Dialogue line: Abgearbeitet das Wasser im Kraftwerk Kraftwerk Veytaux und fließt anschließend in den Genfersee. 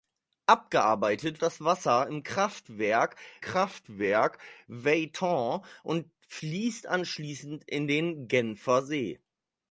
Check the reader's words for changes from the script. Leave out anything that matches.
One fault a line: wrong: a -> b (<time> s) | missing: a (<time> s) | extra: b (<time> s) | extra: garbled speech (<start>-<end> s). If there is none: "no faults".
no faults